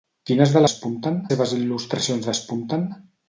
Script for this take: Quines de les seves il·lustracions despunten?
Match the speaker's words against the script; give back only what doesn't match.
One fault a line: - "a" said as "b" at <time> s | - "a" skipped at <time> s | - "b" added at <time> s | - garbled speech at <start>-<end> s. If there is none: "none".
- "les" said as "despunten" at 0.7 s